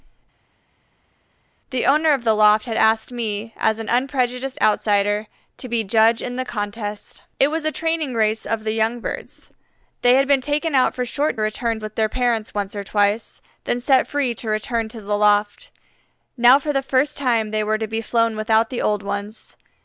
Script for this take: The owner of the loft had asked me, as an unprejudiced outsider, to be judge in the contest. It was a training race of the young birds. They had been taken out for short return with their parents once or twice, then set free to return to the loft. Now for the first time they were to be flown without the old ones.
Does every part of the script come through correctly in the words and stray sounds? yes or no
yes